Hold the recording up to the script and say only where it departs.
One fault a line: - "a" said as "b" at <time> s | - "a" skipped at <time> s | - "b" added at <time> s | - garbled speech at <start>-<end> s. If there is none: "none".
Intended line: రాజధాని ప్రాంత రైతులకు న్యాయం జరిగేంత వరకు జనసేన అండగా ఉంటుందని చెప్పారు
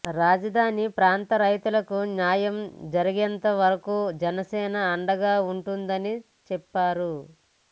none